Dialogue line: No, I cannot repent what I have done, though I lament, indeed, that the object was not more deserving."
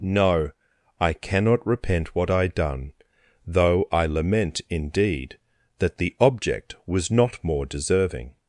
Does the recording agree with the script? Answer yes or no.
no